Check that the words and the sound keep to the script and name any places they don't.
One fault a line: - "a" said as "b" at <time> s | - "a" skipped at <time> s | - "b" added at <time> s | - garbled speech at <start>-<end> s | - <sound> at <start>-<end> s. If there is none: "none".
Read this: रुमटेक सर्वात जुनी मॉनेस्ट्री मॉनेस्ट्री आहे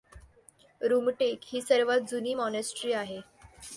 - "ही" added at 1.4 s
- "मॉनेस्ट्री" skipped at 2.9 s